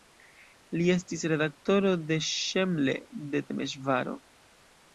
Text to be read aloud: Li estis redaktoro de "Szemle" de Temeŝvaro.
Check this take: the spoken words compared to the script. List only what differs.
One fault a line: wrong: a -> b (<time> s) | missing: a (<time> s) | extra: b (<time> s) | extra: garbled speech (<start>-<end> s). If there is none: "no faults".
no faults